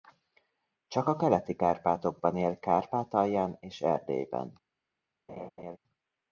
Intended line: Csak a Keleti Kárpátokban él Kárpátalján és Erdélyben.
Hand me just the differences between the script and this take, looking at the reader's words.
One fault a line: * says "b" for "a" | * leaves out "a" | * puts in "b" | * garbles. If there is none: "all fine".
all fine